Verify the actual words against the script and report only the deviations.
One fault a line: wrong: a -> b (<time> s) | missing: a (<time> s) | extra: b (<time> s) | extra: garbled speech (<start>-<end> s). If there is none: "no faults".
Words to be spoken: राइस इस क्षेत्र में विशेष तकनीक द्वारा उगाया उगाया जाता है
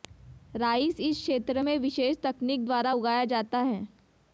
missing: उगाया (3.2 s)